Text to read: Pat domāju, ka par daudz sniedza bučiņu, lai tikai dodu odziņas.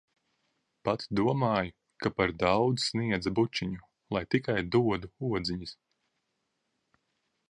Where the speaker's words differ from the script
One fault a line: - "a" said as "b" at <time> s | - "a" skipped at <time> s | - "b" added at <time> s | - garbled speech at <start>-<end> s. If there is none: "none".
none